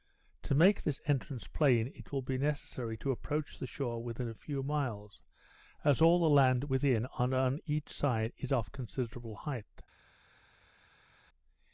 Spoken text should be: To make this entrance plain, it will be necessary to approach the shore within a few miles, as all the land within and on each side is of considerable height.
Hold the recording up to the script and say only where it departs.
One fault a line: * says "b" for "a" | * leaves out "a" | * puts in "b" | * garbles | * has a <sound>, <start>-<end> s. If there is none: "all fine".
all fine